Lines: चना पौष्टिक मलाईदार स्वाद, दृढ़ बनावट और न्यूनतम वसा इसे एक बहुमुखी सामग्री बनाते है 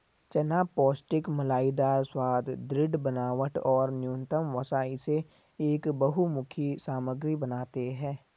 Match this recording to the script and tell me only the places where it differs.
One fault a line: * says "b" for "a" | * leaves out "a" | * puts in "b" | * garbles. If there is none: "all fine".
all fine